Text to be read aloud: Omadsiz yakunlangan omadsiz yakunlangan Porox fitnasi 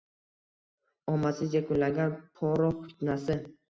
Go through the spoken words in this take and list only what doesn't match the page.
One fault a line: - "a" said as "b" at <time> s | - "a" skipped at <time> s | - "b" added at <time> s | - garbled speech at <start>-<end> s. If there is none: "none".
- "omadsiz yakunlangan" skipped at 2.2 s